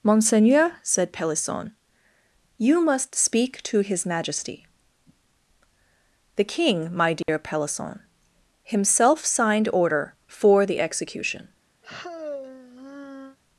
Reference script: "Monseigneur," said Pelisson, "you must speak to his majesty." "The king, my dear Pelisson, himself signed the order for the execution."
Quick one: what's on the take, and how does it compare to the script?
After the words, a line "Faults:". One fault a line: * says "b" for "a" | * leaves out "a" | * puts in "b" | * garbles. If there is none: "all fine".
"Monseigneur," said Pelisson, "you must speak to his majesty." "The king, my dear Pelisson, himself signed order for the execution."
Faults:
* leaves out "the"